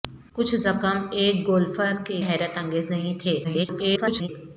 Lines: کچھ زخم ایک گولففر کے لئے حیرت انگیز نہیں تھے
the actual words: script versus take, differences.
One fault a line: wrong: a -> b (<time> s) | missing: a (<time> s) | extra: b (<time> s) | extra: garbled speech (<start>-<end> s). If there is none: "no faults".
missing: لئے (2.2 s)
extra: garbled speech (3.4-4.3 s)